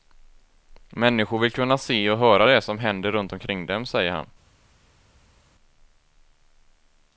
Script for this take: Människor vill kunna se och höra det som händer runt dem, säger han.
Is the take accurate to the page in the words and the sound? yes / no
no